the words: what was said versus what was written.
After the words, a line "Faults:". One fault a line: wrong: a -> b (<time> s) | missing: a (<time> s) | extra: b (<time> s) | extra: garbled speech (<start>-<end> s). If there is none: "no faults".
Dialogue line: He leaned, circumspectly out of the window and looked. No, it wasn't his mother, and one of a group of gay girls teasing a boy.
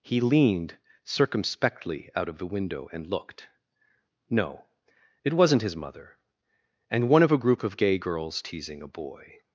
He leaned, circumspectly out of the window and looked. No, it wasn't his mother, and one of a group of gay girls teasing a boy.
Faults:
no faults